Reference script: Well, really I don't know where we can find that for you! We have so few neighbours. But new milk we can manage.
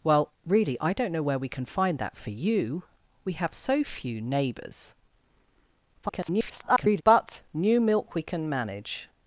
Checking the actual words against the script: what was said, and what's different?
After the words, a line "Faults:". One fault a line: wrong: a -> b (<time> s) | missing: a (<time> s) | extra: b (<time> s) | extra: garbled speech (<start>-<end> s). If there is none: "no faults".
Well, really I don't know where we can find that for you! We have so few neighbours. [garbled] But new milk we can manage.
Faults:
extra: garbled speech (6.0-7.0 s)